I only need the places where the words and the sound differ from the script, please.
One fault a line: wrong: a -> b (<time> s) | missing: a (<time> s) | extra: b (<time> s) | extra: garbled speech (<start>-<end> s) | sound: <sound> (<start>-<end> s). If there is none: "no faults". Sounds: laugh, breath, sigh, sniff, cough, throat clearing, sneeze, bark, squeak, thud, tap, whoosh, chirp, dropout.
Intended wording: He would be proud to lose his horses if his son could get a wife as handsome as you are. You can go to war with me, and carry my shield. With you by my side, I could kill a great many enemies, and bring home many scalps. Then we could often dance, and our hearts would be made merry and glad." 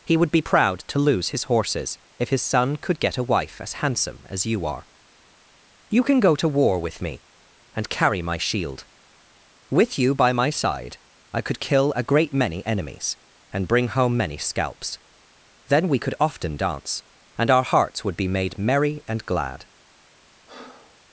sound: breath (20.5-21.0 s)